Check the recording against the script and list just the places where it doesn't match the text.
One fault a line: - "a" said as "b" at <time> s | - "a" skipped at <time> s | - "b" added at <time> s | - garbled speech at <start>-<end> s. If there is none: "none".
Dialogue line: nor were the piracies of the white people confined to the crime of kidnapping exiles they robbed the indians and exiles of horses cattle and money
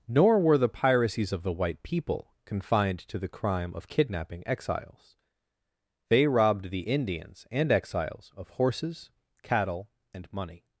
none